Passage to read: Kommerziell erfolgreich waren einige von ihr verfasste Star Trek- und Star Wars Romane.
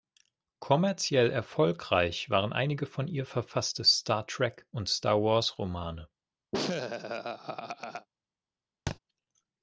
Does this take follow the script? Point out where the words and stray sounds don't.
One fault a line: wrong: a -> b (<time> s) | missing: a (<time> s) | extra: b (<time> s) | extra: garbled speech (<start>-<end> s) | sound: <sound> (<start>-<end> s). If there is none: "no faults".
sound: laugh (6.5-8.1 s)
sound: thud (8.9-9.0 s)